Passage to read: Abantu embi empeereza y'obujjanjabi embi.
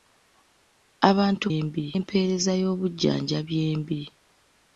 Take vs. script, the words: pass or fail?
pass